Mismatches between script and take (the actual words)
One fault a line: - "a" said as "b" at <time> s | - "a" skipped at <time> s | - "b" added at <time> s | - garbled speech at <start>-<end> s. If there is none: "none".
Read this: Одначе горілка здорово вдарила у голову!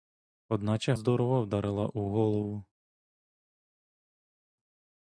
- "горілка" skipped at 0.9 s